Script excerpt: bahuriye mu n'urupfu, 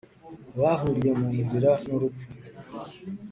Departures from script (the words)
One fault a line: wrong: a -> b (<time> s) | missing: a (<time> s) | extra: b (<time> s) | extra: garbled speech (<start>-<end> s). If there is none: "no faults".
extra: nzira (1.4 s)